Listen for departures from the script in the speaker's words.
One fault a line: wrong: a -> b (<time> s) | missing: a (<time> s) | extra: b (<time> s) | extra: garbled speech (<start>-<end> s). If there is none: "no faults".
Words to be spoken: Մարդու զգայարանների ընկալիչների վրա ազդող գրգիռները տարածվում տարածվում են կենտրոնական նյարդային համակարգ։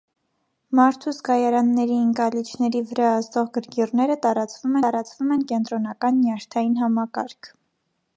no faults